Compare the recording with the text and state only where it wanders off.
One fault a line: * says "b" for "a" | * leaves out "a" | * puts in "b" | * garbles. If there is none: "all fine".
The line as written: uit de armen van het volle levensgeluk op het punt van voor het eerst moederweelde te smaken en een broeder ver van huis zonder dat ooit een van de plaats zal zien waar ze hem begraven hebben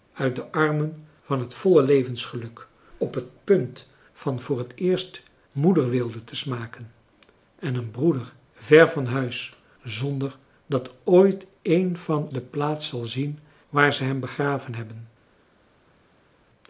all fine